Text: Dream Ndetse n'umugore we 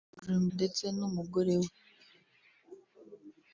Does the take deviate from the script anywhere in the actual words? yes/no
no